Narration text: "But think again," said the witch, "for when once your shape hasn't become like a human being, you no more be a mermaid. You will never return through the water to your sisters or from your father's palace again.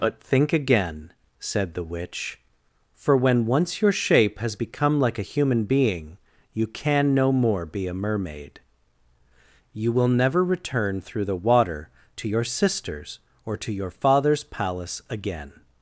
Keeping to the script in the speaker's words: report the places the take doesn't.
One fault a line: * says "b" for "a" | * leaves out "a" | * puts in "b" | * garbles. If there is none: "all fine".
* says "has" for "hasn't"
* puts in "can"
* says "to" for "from"